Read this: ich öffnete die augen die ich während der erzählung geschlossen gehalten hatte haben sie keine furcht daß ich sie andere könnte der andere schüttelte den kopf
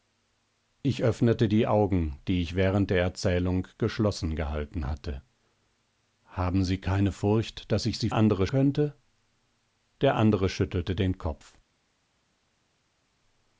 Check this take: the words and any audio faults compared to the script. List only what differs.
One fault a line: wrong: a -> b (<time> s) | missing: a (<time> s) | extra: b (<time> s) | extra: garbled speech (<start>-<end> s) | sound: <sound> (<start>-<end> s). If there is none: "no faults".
no faults